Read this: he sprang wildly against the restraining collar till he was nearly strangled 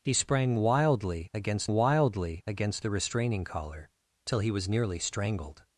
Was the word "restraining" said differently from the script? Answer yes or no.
no